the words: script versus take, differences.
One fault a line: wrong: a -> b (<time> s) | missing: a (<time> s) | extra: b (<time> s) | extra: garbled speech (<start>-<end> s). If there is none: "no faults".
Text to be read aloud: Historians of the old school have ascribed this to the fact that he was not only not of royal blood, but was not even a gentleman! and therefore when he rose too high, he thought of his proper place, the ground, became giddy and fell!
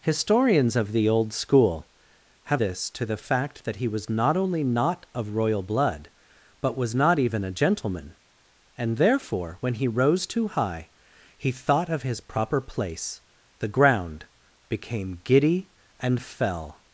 missing: ascribed (2.6 s)